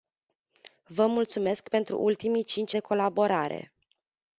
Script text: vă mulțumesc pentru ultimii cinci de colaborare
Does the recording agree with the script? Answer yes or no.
yes